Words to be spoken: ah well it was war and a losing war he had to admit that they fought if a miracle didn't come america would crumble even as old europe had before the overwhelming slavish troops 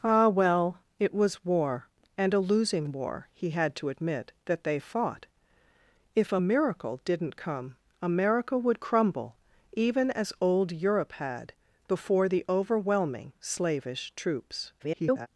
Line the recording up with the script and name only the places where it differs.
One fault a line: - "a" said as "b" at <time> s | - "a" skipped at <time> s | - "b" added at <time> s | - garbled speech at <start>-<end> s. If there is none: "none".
- garbled speech at 14.8-15.3 s